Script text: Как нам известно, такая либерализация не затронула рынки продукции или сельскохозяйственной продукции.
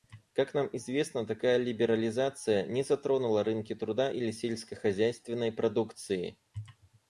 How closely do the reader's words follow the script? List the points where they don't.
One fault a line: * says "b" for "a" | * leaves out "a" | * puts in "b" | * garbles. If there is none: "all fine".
* says "труда" for "продукции"